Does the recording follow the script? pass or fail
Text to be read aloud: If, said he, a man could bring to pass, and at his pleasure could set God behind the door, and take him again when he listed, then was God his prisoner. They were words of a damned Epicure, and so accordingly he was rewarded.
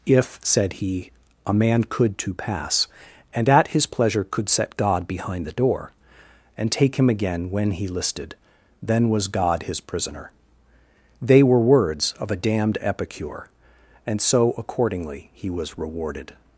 fail